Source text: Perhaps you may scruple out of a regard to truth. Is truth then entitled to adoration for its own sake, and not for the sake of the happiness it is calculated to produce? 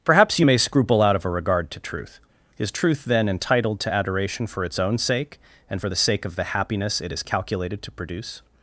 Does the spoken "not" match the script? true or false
false